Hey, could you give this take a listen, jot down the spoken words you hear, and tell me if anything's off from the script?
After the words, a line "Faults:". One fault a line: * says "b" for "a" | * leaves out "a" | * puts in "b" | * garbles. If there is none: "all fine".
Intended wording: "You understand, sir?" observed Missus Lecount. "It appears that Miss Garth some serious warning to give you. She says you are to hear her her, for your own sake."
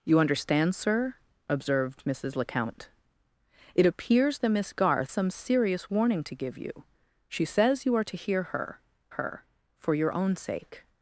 "You understand, sir?" observed Missus Lecount. "It appears that Miss Garth some serious warning to give you. She says you are to hear her her, for your own sake."
Faults:
all fine